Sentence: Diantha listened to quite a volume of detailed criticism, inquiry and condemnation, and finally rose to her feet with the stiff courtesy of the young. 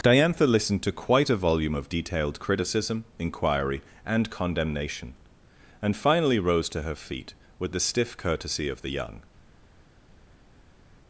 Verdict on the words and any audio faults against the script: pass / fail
pass